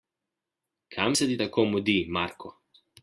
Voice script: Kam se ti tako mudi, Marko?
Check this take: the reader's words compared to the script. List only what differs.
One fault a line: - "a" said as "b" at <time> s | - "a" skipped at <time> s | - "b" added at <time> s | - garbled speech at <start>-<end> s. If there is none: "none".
none